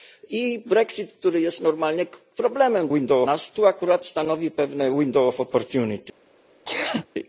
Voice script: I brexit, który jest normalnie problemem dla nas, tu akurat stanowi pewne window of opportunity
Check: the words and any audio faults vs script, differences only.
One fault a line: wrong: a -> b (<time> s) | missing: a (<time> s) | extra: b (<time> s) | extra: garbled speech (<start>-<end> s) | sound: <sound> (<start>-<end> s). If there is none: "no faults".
wrong: dla -> window (2.9 s)
sound: sneeze (6.7-7.1 s)